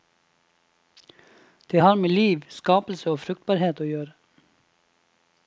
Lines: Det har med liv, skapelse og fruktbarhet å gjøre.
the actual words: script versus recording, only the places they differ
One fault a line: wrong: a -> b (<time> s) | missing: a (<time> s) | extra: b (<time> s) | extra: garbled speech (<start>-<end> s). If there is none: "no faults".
no faults